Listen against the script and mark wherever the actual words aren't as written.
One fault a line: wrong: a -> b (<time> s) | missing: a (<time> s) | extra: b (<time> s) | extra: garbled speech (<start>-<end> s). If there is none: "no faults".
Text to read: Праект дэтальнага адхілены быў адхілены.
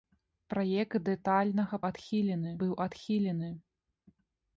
no faults